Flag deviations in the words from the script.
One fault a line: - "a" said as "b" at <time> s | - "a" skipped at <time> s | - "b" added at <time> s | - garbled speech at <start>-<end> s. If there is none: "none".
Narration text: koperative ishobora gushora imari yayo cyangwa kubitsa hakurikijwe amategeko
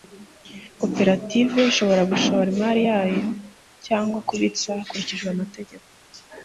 none